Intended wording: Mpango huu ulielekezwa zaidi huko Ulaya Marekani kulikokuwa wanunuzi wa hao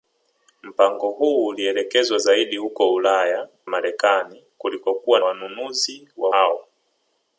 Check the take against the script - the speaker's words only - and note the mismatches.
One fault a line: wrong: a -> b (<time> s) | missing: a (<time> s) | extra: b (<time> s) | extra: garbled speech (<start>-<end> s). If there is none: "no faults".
no faults